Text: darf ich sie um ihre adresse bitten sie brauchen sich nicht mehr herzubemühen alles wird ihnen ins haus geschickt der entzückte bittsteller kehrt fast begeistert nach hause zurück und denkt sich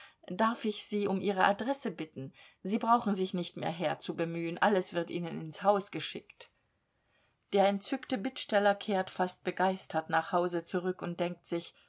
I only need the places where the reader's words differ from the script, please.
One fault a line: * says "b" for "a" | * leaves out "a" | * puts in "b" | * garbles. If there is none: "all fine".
all fine